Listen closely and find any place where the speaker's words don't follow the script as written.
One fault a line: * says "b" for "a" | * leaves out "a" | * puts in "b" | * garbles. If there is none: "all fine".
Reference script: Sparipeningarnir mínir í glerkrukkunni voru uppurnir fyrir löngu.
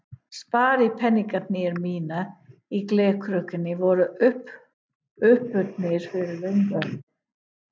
all fine